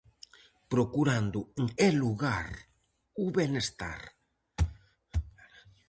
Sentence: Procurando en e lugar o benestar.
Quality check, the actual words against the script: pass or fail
pass